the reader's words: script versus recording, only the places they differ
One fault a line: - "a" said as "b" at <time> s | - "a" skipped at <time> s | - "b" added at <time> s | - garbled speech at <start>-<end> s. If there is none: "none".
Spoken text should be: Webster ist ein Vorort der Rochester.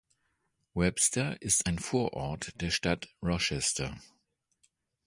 - "Stadt" added at 2.7 s